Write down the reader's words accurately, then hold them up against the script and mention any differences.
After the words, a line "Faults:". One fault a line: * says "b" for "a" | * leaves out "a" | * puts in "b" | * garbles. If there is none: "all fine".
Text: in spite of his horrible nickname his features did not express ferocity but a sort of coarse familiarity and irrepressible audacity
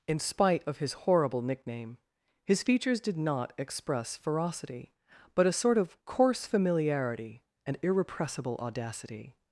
in spite of his horrible nickname his features did not express ferocity but a sort of coarse familiarity and irrepressible audacity
Faults:
all fine